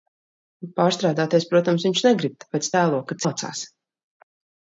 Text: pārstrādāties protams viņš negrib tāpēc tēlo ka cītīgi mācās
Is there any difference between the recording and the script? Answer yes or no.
yes